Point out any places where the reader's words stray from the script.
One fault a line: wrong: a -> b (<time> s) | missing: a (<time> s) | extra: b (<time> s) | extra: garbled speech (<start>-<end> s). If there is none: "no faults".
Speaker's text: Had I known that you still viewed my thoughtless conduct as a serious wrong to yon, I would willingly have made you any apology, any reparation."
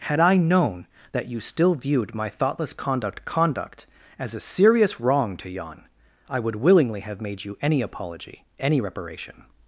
extra: conduct (3.2 s)